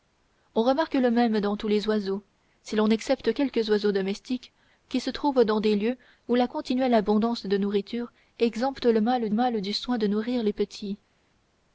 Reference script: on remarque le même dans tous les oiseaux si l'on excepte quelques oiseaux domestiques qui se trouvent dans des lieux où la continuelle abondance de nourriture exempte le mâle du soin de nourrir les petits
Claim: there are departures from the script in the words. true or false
true